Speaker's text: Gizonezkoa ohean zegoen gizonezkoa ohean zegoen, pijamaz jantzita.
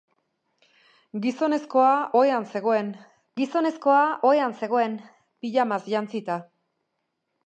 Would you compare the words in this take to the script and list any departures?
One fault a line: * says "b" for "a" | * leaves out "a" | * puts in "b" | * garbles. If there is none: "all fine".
all fine